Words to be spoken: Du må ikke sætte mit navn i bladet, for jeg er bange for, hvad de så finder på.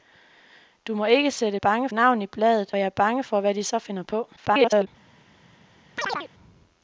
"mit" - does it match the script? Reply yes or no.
no